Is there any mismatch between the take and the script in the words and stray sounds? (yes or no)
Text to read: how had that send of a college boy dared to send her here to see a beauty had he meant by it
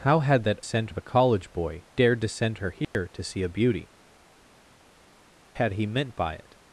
yes